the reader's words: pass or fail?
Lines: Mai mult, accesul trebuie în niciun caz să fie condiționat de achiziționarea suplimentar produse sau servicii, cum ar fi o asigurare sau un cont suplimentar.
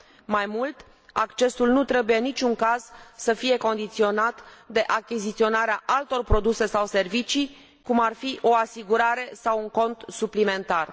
fail